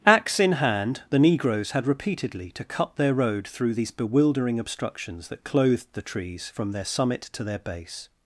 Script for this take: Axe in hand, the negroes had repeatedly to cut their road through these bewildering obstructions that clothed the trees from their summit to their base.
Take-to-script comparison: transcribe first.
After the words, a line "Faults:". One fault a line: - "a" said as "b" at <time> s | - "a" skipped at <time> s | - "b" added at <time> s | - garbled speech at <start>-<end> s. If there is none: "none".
Axe in hand, the negroes had repeatedly to cut their road through these bewildering obstructions that clothed the trees from their summit to their base.
Faults:
none